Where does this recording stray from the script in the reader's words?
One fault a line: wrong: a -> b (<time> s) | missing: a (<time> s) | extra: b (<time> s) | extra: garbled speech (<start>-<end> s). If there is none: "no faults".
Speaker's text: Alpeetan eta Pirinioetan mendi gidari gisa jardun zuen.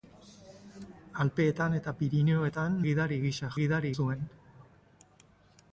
missing: mendi (2.8 s)
wrong: jardun -> gidari (3.6 s)